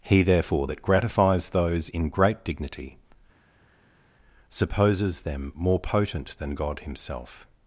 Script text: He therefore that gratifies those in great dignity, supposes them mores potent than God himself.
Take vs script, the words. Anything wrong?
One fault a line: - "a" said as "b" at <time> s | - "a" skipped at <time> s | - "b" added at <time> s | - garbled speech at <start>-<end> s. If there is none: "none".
- "mores" said as "more" at 5.5 s